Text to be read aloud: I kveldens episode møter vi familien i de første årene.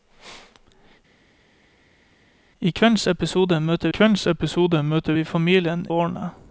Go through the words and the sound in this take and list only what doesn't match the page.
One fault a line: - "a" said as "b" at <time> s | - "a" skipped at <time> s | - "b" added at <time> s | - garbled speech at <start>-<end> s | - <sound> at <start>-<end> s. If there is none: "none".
- "vi familien i de første" said as "kveldens episode møter vi familien" at 3.9 s